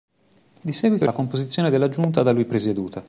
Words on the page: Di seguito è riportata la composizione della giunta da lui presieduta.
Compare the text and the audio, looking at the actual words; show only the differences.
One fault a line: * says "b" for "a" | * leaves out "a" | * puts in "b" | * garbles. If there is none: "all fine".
* leaves out "riportata"